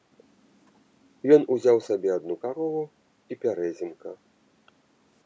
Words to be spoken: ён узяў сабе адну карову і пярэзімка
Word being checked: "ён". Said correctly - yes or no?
yes